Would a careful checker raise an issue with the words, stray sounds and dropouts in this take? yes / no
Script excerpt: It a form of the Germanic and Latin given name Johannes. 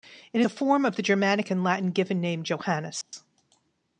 yes